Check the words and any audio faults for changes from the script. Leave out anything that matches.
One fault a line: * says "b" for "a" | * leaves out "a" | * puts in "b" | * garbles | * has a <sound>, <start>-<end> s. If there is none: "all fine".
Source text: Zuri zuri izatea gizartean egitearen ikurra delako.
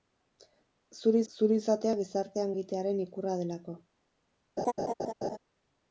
* has a laugh, 4.6-5.4 s